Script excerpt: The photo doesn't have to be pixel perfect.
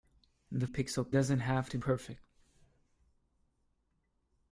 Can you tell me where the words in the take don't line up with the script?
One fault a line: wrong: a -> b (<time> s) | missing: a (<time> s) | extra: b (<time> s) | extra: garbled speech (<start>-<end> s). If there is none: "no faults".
wrong: photo -> pixel (0.6 s)
missing: be pixel (1.8 s)